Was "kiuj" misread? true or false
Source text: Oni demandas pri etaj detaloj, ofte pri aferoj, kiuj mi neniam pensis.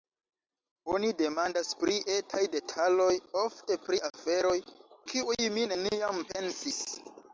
false